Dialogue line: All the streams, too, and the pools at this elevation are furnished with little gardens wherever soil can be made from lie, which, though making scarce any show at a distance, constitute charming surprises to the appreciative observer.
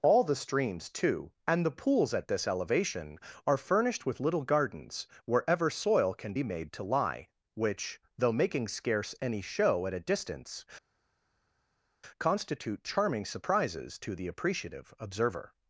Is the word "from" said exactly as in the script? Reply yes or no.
no